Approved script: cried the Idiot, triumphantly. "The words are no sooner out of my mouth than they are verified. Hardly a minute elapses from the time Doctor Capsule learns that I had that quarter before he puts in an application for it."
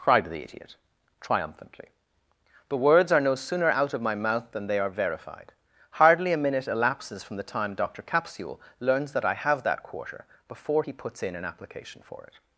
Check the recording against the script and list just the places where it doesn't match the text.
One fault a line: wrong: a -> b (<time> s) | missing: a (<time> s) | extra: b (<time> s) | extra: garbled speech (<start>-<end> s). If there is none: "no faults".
wrong: had -> have (9.3 s)